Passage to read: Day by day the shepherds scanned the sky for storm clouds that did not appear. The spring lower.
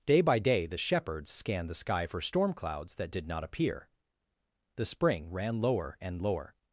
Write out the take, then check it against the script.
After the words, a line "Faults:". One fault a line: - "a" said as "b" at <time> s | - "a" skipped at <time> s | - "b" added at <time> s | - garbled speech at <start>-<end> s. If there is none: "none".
Day by day the shepherds scanned the sky for storm clouds that did not appear. The spring ran lower and lower.
Faults:
- "ran lower and" added at 5.3 s